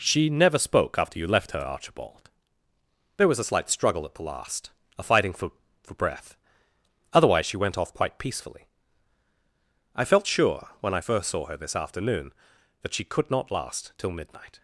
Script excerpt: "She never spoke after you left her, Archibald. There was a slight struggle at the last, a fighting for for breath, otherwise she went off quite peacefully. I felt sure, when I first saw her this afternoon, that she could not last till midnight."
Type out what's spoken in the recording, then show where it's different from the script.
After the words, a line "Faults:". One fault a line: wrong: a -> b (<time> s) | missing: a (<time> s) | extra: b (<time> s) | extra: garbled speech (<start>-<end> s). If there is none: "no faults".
"She never spoke after you left her, Archibald. There was a slight struggle at the last, a fighting for for breath, otherwise she went off quite peacefully. I felt sure, when I first saw her this afternoon, that she could not last till midnight."
Faults:
no faults